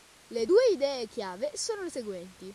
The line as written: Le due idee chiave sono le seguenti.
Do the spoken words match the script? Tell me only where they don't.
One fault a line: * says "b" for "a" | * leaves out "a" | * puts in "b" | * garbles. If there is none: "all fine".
all fine